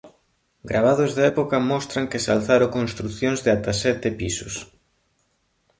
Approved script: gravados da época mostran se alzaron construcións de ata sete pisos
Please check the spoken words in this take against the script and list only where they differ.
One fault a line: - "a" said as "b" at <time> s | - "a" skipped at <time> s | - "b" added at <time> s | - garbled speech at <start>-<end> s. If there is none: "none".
- "que" added at 2.1 s